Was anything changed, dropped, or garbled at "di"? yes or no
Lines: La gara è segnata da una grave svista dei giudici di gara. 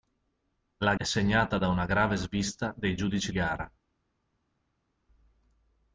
yes